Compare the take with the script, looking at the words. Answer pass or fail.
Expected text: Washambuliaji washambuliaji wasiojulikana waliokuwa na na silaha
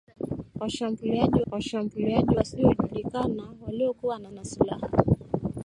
pass